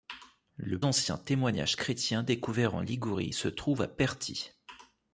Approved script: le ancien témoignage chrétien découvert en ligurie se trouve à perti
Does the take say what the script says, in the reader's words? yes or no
yes